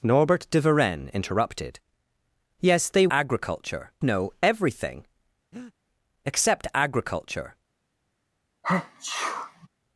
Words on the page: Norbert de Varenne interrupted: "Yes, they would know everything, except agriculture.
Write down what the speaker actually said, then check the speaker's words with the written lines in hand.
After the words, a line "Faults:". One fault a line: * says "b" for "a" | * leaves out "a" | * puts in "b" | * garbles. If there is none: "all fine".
Norbert de Varenne interrupted: "Yes, they agriculture know everything, except agriculture.
Faults:
* says "agriculture" for "would"